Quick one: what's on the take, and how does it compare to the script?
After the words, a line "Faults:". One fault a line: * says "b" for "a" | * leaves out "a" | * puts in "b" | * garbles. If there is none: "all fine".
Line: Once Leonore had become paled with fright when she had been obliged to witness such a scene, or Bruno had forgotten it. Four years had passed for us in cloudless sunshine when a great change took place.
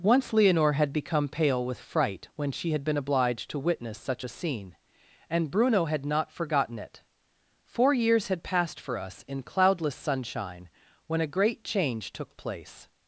Once Leonore had become pale with fright when she had been obliged to witness such a scene, and Bruno had not forgotten it. Four years had passed for us in cloudless sunshine when a great change took place.
Faults:
* says "pale" for "paled"
* says "and" for "or"
* puts in "not"